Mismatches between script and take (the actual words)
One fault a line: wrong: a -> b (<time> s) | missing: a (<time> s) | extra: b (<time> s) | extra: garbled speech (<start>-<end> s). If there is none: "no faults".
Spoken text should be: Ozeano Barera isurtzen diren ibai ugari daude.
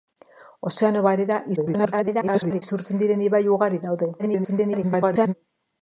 extra: garbled speech (1.6-2.6 s)
extra: garbled speech (4.2-5.3 s)